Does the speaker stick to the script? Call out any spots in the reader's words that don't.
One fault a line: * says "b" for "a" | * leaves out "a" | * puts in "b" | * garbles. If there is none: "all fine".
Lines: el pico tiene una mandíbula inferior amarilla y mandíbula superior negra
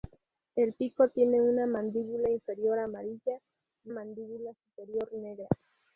all fine